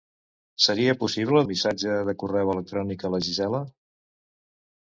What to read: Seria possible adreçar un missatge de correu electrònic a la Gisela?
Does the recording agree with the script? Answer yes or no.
no